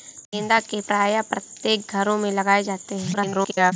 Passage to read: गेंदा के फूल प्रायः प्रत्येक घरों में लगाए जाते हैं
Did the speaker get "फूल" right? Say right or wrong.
wrong